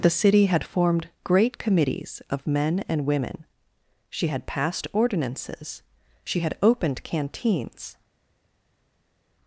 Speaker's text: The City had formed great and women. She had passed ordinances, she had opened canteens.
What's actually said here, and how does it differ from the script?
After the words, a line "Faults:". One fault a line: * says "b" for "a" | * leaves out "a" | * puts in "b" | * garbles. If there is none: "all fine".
The City had formed great committees of men and women. She had passed ordinances, she had opened canteens.
Faults:
* puts in "committees of men"